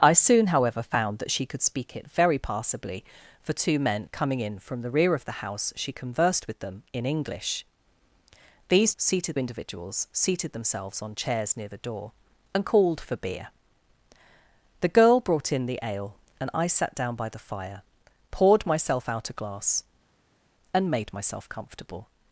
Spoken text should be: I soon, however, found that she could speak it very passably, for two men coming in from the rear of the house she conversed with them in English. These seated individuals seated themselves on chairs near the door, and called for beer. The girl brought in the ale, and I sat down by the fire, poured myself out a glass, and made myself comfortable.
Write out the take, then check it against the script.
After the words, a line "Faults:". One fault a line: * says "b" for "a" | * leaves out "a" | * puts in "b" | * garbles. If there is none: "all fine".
I soon, however, found that she could speak it very passably, for two men coming in from the rear of the house she conversed with them in English. These seated individuals seated themselves on chairs near the door, and called for beer. The girl brought in the ale, and I sat down by the fire, poured myself out a glass, and made myself comfortable.
Faults:
all fine